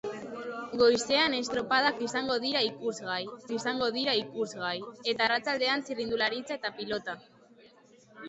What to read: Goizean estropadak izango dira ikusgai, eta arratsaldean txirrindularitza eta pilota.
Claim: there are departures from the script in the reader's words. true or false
true